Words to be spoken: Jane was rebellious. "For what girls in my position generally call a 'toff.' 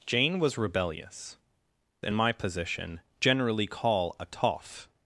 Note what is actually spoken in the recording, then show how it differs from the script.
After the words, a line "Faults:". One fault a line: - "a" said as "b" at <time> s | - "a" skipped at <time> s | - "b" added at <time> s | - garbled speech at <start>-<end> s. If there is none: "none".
Jane was rebellious. "In my position generally call a 'toff.'
Faults:
- "For what girls" skipped at 1.4 s